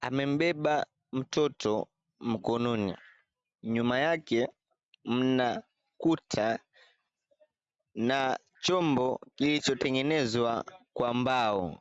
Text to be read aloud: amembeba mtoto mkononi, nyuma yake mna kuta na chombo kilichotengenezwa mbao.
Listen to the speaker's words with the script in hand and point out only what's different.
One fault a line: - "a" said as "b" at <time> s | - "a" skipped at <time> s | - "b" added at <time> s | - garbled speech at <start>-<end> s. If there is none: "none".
- "kwa" added at 10.9 s